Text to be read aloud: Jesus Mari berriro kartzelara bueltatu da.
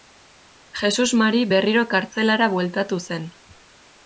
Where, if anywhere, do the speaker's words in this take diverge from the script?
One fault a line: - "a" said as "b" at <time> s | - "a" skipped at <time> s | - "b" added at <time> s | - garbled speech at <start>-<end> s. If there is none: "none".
- "da" said as "zen" at 3.1 s